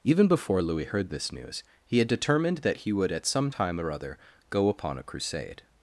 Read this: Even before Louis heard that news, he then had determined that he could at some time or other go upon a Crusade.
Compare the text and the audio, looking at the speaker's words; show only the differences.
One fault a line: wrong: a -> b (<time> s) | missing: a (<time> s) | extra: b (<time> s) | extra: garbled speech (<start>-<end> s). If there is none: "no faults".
wrong: that -> this (1.1 s)
missing: then (2.0 s)
wrong: could -> would (2.9 s)